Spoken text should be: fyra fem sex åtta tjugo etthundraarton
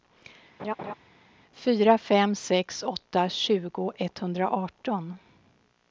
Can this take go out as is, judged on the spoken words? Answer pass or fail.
pass